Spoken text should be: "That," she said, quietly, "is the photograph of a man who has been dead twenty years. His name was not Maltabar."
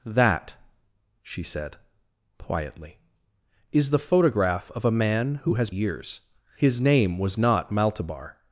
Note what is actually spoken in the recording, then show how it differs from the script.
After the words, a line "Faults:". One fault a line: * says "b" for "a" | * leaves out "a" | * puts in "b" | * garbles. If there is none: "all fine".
"That," she said, quietly, "is the photograph of a man who has years. His name was not Maltabar."
Faults:
* leaves out "been dead twenty"